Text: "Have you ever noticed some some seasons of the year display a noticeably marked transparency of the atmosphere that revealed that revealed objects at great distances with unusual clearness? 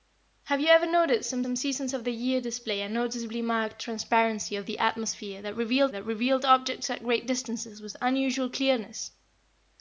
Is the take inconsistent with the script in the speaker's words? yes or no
no